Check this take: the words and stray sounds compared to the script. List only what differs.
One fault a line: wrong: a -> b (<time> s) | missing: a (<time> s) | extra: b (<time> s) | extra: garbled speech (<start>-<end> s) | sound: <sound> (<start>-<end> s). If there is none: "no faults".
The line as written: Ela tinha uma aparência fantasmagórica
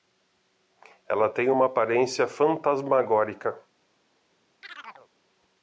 wrong: tinha -> tem (1.3 s)
sound: chirp (4.6-5.1 s)